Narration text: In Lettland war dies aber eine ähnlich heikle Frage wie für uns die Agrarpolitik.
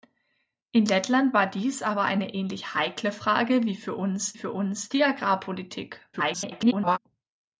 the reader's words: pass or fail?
fail